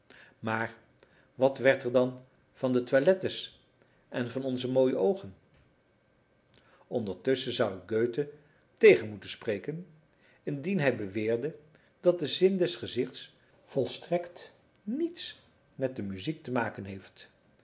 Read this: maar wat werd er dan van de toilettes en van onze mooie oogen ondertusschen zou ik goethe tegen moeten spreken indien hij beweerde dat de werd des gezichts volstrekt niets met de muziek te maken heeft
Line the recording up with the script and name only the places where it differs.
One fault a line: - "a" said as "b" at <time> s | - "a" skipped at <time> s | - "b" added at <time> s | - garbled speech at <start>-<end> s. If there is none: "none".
- "werd" said as "zin" at 12.3 s